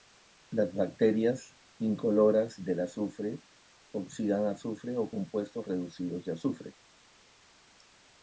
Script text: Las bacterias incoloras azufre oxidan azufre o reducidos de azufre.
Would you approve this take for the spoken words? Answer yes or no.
no